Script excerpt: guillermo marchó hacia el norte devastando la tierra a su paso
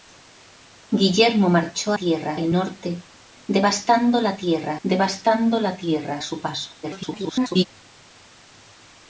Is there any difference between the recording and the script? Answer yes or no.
yes